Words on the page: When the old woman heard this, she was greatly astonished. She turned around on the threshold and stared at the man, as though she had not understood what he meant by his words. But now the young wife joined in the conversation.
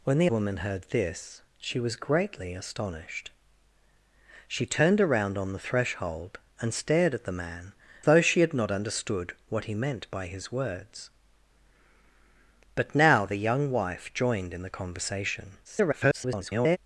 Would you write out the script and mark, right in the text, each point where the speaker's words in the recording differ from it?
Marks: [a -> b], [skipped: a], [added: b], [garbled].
When the [skipped: old] woman heard this, she was greatly astonished. She turned around on the threshold and stared at the man, [skipped: as] though she had not understood what he meant by his words. But now the young wife joined in the conversation. [garbled]